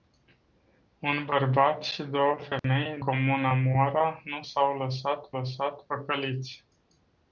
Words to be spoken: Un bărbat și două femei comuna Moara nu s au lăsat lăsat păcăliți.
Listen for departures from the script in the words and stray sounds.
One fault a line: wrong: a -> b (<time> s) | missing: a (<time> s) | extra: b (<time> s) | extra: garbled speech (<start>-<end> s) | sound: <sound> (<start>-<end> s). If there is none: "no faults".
sound: dropout (2.6-2.6 s)